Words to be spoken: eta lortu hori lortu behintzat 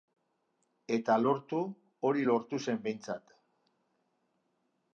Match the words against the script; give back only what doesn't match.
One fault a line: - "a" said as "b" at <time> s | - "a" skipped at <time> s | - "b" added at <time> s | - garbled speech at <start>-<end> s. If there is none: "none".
- "zen" added at 2.7 s